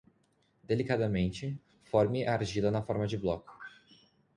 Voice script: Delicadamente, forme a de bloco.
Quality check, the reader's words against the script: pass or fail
fail